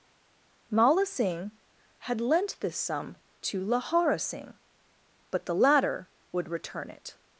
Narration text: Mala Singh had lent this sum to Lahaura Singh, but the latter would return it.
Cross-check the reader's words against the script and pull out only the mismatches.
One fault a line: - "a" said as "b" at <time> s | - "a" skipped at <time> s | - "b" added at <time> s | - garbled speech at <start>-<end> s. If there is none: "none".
none